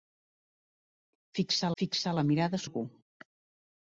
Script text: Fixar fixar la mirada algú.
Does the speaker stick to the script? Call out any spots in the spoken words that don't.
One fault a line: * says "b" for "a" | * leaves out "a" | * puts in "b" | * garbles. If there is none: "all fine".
all fine